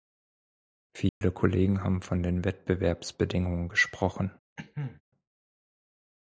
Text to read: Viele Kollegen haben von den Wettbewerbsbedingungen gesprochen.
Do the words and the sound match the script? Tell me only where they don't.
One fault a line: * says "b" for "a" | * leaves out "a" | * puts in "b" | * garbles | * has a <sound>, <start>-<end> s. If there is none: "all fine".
* has a dropout, 1.1-1.2 s
* has a cough, 4.6-5.0 s